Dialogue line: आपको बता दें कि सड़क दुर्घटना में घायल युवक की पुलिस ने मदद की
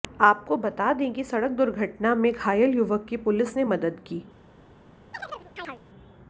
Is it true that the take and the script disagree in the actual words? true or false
false